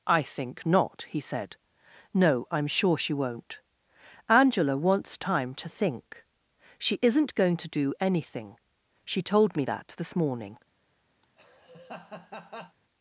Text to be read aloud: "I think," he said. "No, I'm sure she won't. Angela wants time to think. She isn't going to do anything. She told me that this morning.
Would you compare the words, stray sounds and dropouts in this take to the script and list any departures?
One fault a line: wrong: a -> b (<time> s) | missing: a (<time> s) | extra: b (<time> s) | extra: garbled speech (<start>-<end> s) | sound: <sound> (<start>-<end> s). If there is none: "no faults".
extra: not (0.7 s)
sound: laugh (11.2-12.8 s)